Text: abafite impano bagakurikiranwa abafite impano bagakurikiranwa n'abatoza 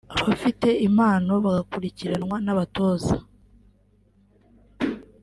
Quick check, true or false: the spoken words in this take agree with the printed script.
false